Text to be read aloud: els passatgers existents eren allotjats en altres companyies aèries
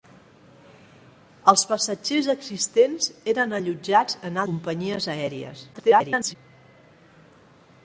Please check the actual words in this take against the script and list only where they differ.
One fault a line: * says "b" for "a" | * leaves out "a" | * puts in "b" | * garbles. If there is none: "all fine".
* leaves out "altres"
* garbles